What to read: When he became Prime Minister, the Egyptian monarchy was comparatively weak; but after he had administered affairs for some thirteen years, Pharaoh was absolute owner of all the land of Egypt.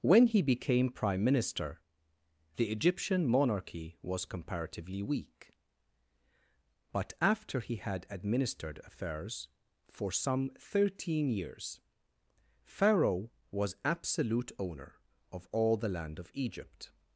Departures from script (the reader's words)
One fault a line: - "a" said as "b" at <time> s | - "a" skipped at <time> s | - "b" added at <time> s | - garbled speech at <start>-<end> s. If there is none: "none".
none